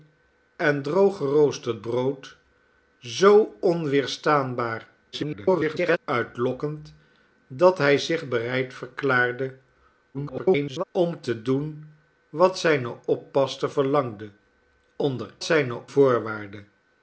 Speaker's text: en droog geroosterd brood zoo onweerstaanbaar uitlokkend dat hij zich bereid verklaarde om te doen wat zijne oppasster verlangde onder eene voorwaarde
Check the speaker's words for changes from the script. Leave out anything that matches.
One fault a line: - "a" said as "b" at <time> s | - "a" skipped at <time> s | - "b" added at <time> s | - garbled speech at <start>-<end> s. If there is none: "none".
- garbled speech at 5.1-6.0 s
- garbled speech at 10.1-10.8 s
- "eene" said as "zijne" at 15.4 s